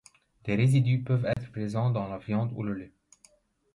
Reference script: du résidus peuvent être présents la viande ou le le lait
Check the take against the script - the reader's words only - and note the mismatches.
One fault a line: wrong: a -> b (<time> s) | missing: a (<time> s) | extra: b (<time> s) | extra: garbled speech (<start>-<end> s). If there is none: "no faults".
wrong: du -> des (0.5 s)
extra: dans (1.9 s)
missing: le (2.7 s)